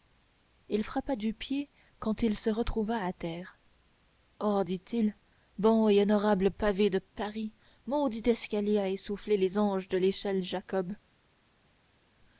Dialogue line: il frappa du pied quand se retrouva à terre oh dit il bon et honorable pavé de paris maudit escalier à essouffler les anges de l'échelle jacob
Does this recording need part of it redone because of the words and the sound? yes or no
yes